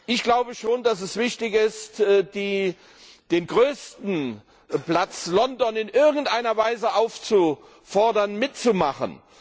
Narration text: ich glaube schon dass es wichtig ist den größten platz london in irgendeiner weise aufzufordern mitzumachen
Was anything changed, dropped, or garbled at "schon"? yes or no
no